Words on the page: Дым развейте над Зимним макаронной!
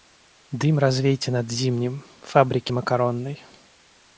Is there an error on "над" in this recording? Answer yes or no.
no